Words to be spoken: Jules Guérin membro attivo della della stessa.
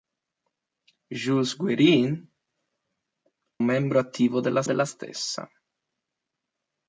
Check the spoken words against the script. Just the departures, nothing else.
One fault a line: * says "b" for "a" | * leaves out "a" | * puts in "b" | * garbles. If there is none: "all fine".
all fine